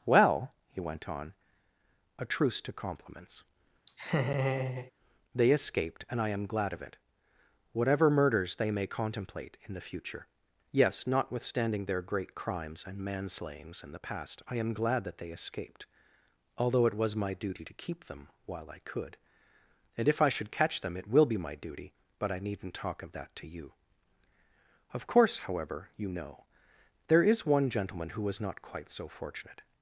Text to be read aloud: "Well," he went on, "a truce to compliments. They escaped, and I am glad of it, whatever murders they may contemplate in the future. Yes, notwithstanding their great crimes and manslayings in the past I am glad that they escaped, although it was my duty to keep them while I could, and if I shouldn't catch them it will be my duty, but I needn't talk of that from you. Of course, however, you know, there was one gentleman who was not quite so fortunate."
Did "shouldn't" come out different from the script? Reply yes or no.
yes